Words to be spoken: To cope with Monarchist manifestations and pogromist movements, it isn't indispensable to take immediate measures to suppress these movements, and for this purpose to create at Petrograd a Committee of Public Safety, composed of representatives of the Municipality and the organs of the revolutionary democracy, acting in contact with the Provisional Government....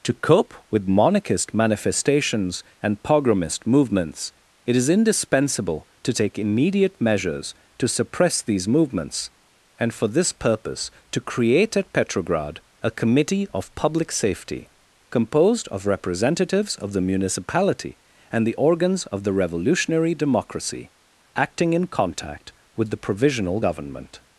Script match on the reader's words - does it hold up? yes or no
no